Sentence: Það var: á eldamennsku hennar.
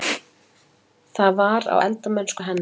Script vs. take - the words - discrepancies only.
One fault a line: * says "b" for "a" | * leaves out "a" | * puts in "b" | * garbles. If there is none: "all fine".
all fine